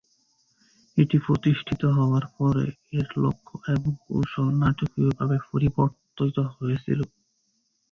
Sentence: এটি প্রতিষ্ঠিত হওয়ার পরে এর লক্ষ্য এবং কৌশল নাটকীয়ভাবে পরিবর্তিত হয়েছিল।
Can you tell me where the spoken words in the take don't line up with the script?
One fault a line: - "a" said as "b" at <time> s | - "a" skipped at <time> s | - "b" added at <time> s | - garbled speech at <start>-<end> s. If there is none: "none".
none